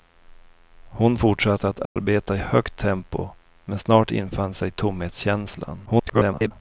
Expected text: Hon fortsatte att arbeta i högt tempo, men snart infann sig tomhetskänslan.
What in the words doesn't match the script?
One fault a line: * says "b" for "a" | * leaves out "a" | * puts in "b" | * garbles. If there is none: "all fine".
* garbles